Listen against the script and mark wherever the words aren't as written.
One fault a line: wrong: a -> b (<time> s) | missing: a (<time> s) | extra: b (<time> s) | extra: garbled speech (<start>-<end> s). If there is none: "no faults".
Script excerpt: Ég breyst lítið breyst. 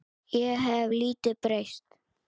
wrong: breyst -> hef (0.7 s)